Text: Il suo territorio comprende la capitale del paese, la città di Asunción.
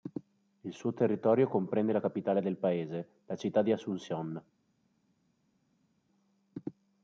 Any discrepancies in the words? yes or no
no